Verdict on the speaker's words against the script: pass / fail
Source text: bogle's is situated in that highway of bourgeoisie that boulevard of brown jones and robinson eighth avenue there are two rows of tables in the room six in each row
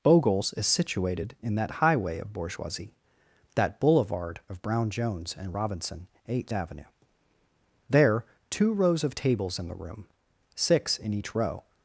fail